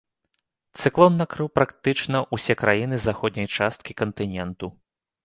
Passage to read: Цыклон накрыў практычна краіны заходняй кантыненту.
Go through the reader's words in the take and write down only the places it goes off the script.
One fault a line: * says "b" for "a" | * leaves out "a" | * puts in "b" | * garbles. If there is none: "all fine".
* puts in "ўсе"
* puts in "часткі"